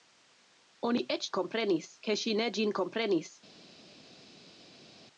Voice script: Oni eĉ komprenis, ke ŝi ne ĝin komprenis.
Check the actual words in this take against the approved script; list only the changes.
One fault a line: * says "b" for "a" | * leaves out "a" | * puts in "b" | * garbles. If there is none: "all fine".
all fine